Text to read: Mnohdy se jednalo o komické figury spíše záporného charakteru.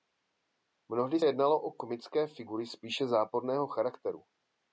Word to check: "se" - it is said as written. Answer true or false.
false